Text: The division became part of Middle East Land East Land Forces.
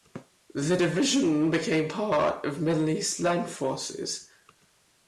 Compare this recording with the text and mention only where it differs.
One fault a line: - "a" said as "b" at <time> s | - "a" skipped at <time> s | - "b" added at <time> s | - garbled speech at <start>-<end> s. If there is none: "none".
- "East Land" skipped at 3.5 s